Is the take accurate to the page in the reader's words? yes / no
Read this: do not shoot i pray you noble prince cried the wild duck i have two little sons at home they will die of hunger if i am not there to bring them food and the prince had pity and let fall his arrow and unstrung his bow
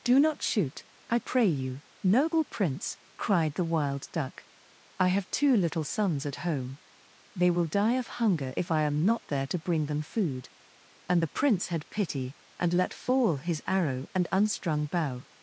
no